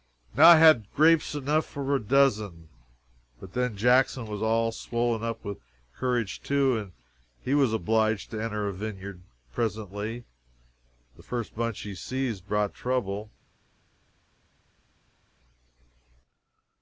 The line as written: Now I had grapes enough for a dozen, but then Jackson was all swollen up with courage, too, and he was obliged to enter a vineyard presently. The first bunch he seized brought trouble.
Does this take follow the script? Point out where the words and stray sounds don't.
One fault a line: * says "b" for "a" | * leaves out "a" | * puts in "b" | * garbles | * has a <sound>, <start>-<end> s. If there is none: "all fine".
all fine